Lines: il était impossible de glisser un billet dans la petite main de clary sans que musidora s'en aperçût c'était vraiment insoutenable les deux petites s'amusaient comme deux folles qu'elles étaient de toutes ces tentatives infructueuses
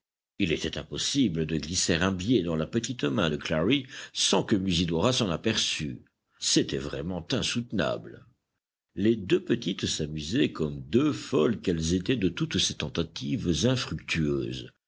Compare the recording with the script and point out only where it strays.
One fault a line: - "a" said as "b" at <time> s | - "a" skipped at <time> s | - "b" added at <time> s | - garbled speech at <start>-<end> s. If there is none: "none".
none